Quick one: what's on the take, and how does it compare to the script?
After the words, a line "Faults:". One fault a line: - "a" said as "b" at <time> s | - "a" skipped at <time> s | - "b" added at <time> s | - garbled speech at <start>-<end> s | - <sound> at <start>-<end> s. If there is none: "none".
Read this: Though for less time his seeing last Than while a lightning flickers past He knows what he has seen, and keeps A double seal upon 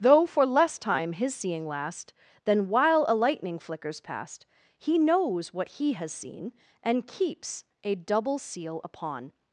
Though for less time his seeing last Than while a lightning flickers past He knows what he has seen, and keeps A double seal upon
Faults:
none